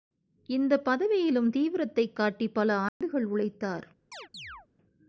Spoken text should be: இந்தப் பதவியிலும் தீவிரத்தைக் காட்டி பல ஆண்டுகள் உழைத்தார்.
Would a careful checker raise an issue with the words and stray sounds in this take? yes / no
yes